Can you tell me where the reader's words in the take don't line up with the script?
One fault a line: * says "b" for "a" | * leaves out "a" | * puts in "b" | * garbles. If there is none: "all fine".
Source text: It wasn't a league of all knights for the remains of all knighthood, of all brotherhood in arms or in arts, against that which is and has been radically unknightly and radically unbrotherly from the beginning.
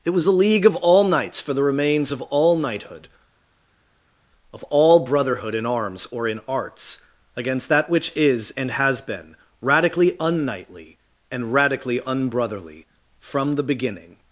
* says "was" for "wasn't"